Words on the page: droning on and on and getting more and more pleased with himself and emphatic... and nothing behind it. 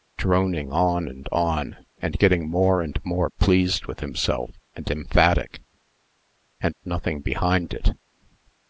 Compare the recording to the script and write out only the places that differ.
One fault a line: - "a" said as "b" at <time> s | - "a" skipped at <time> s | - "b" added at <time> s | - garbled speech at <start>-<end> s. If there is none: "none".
none